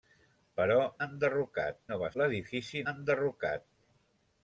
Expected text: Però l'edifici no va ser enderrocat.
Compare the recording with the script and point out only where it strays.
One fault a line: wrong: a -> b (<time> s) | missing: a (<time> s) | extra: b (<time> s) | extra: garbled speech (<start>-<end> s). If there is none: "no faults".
wrong: l'edifici -> enderrocat (1.1 s)
wrong: ser -> l'edifici (2.2 s)